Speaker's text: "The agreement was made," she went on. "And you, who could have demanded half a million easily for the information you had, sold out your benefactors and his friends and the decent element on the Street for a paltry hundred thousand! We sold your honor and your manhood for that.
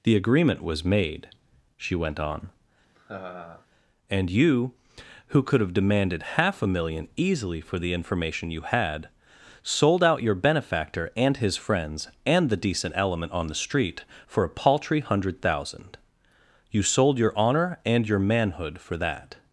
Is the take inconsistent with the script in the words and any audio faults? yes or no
yes